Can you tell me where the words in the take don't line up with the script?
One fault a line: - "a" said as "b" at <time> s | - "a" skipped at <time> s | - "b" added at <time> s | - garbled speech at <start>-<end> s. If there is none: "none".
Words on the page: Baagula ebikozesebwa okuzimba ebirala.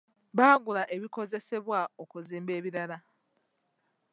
none